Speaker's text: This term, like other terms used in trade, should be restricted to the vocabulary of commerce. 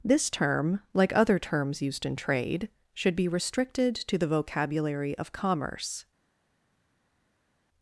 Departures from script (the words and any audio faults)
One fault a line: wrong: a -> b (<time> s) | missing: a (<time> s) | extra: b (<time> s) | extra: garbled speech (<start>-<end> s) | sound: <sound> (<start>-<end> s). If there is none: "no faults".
no faults